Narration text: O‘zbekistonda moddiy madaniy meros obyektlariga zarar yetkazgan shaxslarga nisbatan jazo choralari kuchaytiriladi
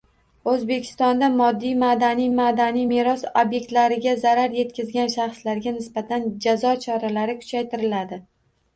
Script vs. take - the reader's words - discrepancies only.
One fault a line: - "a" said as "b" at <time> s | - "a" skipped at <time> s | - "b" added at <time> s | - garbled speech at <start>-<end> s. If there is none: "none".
- "madaniy" added at 2.4 s